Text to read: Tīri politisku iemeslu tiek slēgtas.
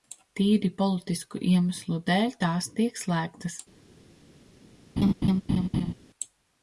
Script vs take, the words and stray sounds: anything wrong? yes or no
yes